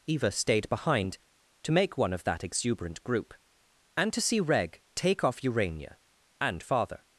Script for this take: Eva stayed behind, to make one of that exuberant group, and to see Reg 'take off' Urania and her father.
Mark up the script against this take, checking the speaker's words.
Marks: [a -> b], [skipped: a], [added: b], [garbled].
Eva stayed behind, to make one of that exuberant group, and to see Reg 'take off' Urania and [skipped: her] father.